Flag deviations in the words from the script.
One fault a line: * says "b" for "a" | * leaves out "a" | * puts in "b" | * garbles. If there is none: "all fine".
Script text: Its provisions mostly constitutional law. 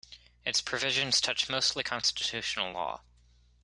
* puts in "touch"